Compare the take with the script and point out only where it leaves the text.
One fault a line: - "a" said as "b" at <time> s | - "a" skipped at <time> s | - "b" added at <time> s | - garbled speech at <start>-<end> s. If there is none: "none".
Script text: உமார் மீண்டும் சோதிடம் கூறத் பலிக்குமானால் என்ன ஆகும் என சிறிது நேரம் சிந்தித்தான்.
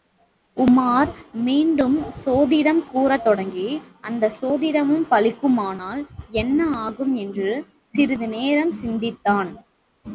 - "தொடங்கி அந்தச் சோதிடமும்" added at 3.2 s
- "என" said as "என்று" at 7.1 s